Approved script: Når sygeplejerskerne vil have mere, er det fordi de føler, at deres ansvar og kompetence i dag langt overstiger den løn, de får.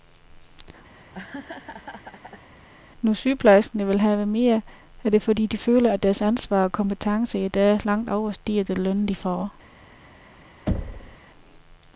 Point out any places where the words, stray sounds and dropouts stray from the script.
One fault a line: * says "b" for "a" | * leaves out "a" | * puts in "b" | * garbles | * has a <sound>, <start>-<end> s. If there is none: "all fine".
* has a laugh, 0.9-2.5 s
* has a thud, 10.7-11.2 s